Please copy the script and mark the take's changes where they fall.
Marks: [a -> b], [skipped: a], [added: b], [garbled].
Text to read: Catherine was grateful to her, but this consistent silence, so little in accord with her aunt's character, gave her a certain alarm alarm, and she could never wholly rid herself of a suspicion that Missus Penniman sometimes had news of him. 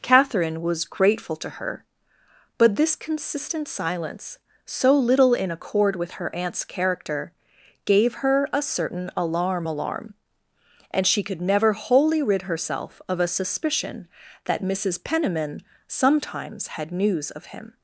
Catherine was grateful to her, but this consistent silence, so little in accord with her aunt's character, gave her a certain alarm alarm, and she could never wholly rid herself of a suspicion that Missus Penniman sometimes had news of him.